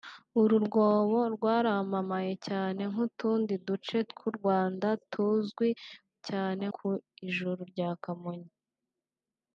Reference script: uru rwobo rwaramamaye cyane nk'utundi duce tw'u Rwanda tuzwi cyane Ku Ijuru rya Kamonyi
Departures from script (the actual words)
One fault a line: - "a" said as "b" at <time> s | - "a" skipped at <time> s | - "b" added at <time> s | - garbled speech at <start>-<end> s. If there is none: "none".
none